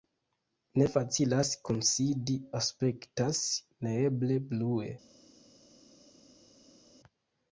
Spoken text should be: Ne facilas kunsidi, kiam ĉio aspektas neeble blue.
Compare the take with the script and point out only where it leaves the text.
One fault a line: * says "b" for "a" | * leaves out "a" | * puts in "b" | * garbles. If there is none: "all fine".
* leaves out "kiam ĉio"